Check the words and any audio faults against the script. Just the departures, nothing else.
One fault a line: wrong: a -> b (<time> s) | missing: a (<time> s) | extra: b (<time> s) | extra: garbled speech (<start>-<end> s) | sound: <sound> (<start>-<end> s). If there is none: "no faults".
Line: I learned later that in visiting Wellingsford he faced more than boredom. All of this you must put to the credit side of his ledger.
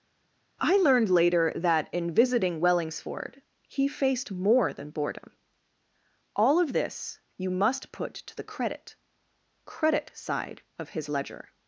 extra: credit (9.6 s)